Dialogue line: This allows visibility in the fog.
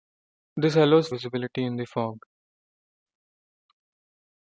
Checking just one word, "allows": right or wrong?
right